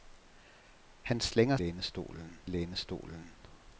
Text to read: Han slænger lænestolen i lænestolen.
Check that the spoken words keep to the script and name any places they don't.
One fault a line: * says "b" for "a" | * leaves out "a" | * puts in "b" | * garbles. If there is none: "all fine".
all fine